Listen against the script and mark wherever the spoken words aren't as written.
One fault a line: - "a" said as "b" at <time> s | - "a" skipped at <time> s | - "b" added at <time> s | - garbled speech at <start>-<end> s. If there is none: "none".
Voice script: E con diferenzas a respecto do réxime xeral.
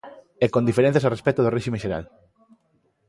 none